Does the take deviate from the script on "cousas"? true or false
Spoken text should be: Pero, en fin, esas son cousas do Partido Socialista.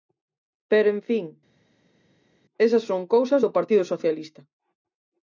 false